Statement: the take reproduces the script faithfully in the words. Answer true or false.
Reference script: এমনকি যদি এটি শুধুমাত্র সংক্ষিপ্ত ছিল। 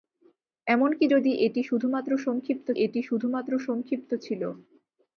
false